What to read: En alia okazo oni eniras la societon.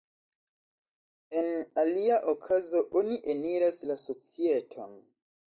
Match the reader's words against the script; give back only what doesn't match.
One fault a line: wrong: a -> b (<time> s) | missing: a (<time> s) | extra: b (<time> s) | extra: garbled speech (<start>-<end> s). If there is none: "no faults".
no faults